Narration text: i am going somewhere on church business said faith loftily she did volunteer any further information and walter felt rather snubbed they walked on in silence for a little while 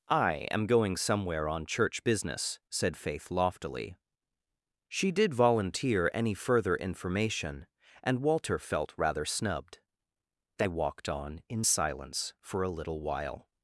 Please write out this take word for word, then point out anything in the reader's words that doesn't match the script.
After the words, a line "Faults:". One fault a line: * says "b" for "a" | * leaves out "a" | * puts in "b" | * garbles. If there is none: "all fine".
i am going somewhere on church business said faith loftily she did volunteer any further information and walter felt rather snubbed they walked on in silence for a little while
Faults:
all fine